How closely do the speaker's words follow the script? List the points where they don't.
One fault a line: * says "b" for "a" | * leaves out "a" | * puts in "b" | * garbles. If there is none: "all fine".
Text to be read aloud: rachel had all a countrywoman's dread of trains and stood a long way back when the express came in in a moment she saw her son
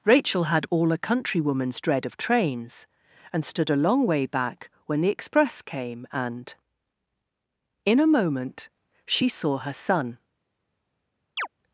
* says "and" for "in"